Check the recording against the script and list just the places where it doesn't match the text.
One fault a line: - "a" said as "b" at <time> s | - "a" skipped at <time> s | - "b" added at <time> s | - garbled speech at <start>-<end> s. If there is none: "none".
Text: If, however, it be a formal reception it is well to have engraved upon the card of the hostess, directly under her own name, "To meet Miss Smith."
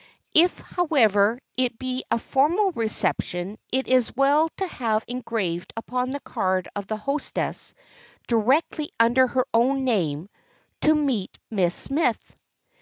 none